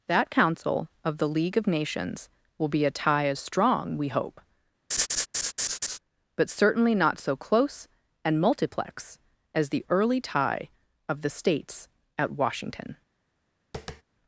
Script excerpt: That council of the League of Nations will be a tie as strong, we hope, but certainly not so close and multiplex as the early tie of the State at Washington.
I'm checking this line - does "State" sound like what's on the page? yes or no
no